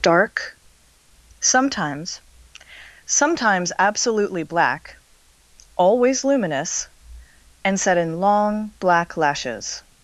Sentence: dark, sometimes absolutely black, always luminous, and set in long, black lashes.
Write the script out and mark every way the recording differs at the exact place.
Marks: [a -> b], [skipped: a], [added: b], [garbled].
dark, sometimes [added: sometimes] absolutely black, always luminous, and set in long, black lashes.